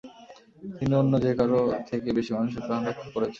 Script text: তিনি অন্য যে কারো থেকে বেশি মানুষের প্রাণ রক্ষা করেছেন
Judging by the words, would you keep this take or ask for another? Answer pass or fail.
pass